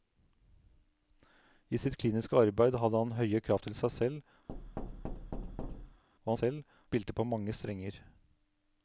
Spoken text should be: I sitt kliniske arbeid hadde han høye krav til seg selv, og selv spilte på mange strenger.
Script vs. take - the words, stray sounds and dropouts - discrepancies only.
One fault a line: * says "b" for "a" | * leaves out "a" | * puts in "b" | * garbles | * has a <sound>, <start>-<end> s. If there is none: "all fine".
* has a thud, 4.5-6.0 s